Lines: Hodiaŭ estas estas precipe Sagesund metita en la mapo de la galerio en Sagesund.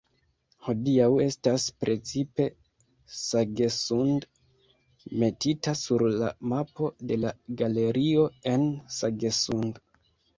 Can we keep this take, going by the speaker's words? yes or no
no